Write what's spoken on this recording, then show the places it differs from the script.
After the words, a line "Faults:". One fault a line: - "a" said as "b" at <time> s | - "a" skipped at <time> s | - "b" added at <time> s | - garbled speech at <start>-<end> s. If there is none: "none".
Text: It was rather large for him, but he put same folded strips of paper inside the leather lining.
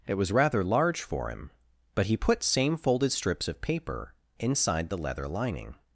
It was rather large for him, but he put same folded strips of paper inside the leather lining.
Faults:
none